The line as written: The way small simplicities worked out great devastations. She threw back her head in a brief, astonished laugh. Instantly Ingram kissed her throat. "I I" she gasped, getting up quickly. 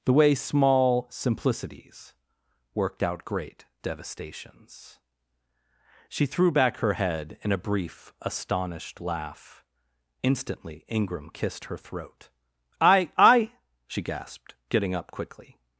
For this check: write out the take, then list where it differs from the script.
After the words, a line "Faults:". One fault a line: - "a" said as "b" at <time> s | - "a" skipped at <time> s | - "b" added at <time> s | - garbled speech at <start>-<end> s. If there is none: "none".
The way small simplicities worked out great devastations. She threw back her head in a brief, astonished laugh. Instantly Ingram kissed her throat. "I I" she gasped, getting up quickly.
Faults:
none